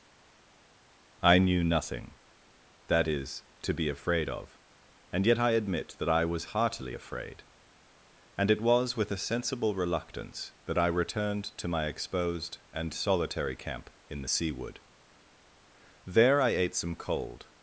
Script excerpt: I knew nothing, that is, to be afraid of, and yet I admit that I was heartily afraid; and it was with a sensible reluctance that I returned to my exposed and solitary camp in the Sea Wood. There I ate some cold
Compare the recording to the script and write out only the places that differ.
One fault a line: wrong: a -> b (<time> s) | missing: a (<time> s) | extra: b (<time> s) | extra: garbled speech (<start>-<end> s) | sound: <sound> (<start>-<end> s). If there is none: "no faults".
no faults